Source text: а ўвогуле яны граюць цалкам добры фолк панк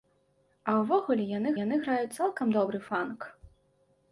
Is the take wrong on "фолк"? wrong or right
wrong